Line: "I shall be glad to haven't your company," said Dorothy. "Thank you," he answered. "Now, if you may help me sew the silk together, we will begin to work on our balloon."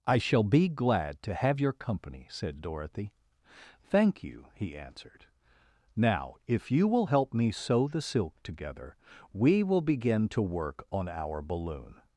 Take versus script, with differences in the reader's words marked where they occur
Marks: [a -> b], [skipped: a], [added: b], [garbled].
"I shall be glad to [haven't -> have] your company," said Dorothy. "Thank you," he answered. "Now, if you [may -> will] help me sew the silk together, we will begin to work on our balloon."